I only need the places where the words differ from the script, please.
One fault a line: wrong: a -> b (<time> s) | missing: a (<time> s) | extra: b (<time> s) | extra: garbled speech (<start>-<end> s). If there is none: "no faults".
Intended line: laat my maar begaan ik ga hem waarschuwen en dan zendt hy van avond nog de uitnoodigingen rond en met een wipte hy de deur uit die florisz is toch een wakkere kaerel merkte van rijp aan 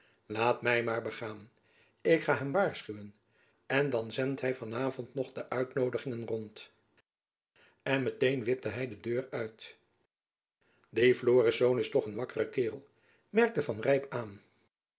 no faults